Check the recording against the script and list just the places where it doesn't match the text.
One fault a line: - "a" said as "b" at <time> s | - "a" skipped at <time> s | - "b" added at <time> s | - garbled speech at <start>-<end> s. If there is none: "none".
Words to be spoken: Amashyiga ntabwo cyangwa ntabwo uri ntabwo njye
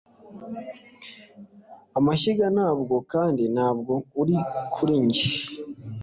- "cyangwa" said as "kandi" at 3.1 s
- "ntabwo" said as "kuri" at 4.7 s